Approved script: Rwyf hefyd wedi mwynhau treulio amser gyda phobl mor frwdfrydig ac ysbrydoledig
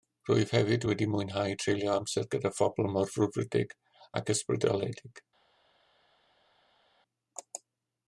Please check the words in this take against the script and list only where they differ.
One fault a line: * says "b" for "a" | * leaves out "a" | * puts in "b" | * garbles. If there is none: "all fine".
all fine